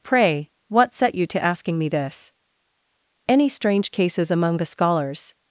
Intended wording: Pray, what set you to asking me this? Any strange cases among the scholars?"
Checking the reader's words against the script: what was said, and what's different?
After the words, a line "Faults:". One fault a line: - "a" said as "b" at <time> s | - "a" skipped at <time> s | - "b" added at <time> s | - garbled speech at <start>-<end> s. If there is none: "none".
Pray, what set you to asking me this? Any strange cases among the scholars?"
Faults:
none